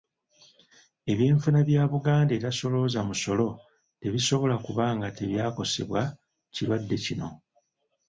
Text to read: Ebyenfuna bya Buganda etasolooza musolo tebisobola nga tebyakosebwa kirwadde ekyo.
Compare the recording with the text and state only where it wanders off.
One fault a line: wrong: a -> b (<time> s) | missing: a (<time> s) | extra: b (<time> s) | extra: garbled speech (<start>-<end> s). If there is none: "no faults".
extra: kuba (4.7 s)
wrong: ekyo -> kino (7.0 s)